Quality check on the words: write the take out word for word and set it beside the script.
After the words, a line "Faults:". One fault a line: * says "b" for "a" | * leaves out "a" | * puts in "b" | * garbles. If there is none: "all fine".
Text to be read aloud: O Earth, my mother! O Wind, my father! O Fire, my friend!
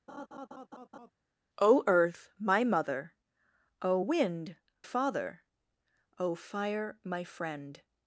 O Earth, my mother! O Wind, father! O Fire, my friend!
Faults:
* leaves out "my"